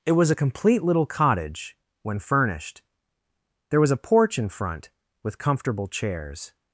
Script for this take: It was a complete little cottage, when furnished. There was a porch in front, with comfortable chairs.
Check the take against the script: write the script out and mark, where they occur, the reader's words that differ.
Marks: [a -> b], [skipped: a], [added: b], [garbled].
It was a complete little cottage, when furnished. There was a porch in front, with comfortable chairs.